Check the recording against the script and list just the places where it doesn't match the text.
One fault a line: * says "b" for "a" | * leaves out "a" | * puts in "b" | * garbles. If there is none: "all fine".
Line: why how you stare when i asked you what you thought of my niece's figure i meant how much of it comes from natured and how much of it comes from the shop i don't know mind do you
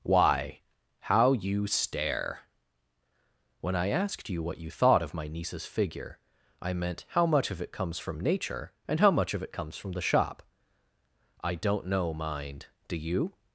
* says "nature" for "natured"